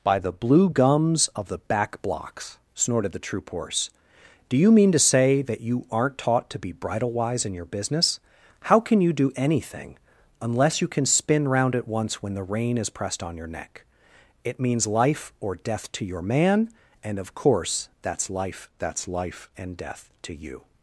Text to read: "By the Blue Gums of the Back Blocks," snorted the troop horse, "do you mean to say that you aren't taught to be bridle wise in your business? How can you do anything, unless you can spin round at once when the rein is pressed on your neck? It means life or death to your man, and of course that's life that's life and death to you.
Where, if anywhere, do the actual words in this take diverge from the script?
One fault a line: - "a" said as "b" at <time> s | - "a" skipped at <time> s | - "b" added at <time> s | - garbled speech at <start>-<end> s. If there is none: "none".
none